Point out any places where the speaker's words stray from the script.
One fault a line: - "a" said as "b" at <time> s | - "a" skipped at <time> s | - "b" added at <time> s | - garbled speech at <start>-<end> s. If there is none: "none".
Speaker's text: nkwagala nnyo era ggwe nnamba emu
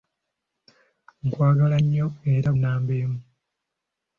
- "ggwe" skipped at 2.5 s